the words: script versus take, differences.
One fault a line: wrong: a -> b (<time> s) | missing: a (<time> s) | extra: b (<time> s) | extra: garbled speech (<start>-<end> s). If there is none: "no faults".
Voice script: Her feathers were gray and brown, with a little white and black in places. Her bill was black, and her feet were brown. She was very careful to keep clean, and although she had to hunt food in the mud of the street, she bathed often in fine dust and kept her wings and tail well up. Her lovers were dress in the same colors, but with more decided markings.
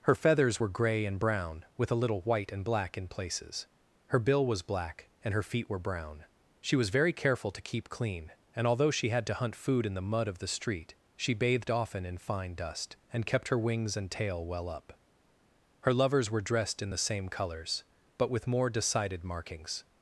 wrong: dress -> dressed (16.4 s)